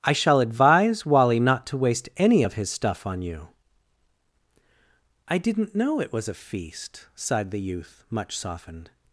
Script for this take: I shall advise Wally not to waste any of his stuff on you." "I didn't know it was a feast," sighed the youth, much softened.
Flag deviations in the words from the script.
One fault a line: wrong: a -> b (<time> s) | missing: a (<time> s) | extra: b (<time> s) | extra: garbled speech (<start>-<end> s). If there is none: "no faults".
no faults